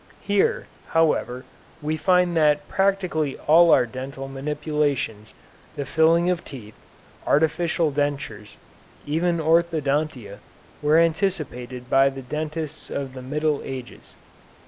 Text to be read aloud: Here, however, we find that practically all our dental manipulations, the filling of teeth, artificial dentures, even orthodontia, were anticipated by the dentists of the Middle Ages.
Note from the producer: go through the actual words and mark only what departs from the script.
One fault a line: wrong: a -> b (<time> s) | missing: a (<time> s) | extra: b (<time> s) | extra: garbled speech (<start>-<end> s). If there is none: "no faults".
no faults